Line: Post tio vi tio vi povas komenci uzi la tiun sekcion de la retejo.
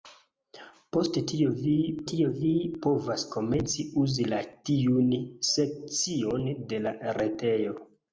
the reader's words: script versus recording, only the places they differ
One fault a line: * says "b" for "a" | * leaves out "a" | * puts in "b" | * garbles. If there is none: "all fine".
all fine